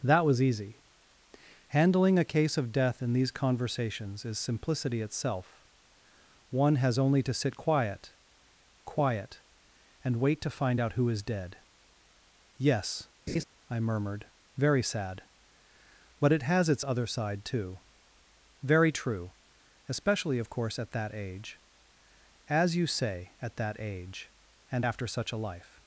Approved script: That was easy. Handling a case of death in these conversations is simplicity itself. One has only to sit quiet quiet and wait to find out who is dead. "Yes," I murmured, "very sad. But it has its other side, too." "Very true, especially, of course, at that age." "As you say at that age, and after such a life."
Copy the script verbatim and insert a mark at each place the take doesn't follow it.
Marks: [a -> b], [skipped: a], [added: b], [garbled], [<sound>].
That was easy. Handling a case of death in these conversations is simplicity itself. One has only to sit quiet quiet and wait to find out who is dead. "Yes," [laugh] I murmured, "very sad. But it has its other side, too." "Very true, especially, of course, at that age." "As you say at that age, and after such a life."